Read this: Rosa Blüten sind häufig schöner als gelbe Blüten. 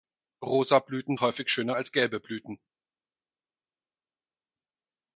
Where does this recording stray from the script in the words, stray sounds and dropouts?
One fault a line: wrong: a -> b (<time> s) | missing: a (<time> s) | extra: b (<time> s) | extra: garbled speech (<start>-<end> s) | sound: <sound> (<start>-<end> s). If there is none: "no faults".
missing: sind (1.2 s)